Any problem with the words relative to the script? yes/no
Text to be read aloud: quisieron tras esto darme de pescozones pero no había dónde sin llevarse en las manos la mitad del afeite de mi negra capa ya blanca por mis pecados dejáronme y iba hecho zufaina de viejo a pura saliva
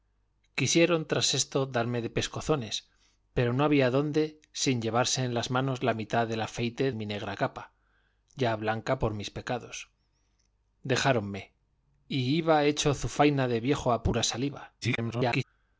yes